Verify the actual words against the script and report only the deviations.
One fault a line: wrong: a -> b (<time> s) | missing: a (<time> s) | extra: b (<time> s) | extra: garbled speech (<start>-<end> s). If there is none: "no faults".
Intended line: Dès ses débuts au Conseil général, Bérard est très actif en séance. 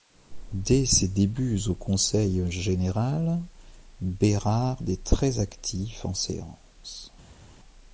no faults